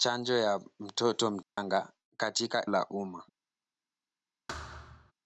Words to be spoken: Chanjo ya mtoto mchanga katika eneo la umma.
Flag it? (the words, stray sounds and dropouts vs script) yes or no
yes